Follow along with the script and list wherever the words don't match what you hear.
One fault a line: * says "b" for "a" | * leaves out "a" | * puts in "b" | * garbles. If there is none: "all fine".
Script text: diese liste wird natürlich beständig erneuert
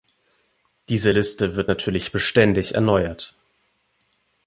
all fine